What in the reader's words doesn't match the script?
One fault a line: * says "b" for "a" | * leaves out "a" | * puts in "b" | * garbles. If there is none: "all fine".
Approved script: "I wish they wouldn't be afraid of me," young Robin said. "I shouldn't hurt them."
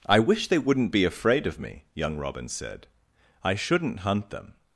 * says "hunt" for "hurt"